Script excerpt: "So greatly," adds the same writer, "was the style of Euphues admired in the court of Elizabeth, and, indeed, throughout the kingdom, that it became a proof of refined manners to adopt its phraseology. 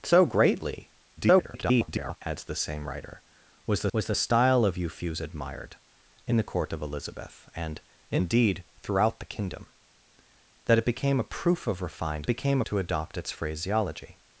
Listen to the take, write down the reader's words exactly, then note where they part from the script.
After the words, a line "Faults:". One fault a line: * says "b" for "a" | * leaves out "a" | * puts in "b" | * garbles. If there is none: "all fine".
"So greatly," [garbled] adds the same writer, "was the was the style of Euphues admired in the court of Elizabeth, and, indeed, throughout the kingdom, that it became a proof of refined became to adopt its phraseology.
Faults:
* garbles
* puts in "was the"
* says "became" for "manners"